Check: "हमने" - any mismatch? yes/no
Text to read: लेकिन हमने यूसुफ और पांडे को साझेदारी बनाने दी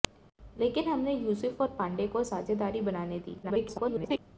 no